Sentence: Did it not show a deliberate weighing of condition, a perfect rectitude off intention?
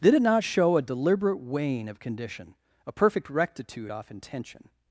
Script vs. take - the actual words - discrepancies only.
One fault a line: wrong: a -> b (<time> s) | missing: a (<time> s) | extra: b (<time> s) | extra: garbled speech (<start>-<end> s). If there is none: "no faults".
no faults